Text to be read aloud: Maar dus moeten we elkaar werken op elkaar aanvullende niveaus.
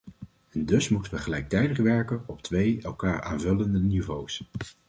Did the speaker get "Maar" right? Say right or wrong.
wrong